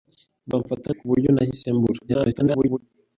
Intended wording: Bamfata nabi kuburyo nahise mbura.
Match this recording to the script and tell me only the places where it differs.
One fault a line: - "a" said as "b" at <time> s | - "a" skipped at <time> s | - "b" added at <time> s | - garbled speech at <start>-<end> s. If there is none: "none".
- "nabi" skipped at 0.9 s
- garbled speech at 2.1-2.8 s